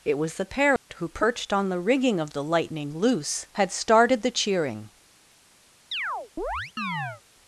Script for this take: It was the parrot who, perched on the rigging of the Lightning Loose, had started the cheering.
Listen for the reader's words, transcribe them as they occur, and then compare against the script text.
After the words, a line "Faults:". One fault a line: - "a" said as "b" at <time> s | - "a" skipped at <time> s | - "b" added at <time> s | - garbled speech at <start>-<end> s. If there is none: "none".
It was the parrot who, perched on the rigging of the Lightning Loose, had started the cheering.
Faults:
none